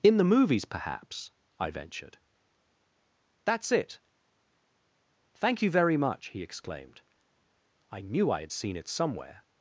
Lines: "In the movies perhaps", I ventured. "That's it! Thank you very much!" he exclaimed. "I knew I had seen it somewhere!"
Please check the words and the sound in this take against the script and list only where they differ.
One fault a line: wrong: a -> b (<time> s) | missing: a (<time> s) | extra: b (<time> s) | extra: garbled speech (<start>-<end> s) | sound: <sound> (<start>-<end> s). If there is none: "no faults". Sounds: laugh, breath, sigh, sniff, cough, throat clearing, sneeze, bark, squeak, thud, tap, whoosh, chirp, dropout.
no faults